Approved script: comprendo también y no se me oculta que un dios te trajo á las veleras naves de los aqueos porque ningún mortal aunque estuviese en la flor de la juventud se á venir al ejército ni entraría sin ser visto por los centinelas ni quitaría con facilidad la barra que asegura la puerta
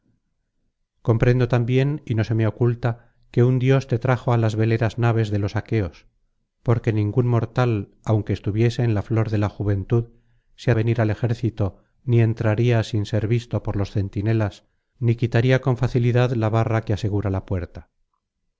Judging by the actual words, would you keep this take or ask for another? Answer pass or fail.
pass